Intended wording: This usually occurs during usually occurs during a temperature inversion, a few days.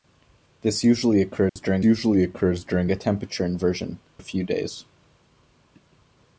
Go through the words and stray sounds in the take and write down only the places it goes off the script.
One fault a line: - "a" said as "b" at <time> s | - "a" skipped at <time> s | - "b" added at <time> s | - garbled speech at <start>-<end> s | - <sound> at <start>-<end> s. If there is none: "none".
- dropout at 1.5-1.6 s